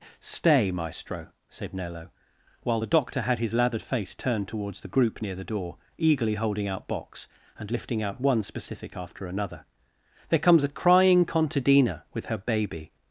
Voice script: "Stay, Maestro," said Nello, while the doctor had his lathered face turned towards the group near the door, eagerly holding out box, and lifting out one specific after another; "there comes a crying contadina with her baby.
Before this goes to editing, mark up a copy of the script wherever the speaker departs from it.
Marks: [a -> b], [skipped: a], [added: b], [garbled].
"Stay, Maestro," said Nello, while the doctor had his lathered face turned towards the group near the door, eagerly holding out box, and lifting out one specific after another; "there comes a crying contadina with her baby.